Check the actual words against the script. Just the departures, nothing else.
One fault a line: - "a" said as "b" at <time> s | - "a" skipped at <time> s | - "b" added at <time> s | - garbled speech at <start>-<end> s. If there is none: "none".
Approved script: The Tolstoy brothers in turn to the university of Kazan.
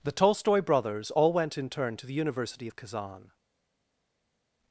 - "all went" added at 1.1 s